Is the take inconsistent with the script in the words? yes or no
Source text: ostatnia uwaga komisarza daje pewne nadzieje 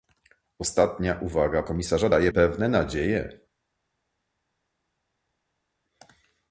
no